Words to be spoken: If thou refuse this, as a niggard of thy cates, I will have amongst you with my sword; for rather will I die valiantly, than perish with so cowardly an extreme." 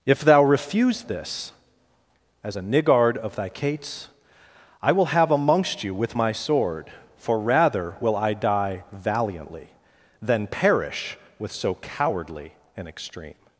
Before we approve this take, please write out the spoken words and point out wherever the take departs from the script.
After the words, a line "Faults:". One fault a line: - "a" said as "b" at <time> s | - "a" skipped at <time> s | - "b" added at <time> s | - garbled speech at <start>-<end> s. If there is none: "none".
If thou refuse this, as a niggard of thy cates, I will have amongst you with my sword; for rather will I die valiantly, than perish with so cowardly an extreme."
Faults:
none